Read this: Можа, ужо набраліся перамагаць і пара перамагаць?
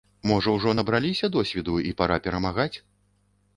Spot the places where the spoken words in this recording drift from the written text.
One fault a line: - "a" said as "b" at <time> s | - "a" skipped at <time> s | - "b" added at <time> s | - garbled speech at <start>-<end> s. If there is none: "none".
- "перамагаць" said as "досведу" at 1.3 s